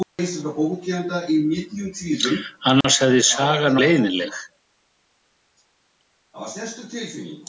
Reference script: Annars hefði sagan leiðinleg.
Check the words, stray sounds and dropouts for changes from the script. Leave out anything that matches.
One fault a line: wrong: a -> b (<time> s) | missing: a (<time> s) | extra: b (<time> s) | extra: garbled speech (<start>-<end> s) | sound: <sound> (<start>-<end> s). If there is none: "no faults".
sound: dropout (2.8-2.8 s)